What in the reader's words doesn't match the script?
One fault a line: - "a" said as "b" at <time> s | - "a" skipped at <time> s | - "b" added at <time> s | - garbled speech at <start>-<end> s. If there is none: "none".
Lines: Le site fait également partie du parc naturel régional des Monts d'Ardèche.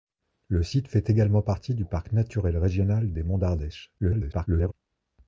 - garbled speech at 4.0-4.7 s